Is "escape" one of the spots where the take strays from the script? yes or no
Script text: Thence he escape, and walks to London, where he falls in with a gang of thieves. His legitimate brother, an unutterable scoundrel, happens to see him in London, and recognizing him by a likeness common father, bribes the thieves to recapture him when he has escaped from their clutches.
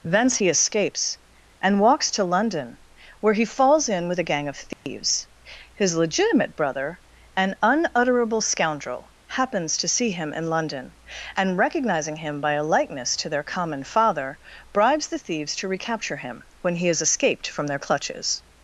yes